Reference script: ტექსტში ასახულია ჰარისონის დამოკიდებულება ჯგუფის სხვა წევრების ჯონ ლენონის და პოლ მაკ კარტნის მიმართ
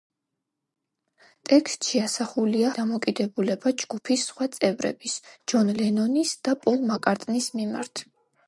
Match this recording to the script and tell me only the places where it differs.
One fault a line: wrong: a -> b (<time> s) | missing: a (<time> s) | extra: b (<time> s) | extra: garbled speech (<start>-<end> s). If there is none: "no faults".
missing: ჰარისონის (2.7 s)